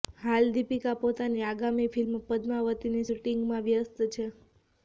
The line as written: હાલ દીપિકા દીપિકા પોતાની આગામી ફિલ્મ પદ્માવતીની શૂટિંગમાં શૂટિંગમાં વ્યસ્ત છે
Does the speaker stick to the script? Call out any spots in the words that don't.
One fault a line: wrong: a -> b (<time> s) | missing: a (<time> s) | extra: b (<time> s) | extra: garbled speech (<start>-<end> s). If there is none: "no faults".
missing: દીપિકા (0.9 s)
missing: શૂટિંગમાં (3.7 s)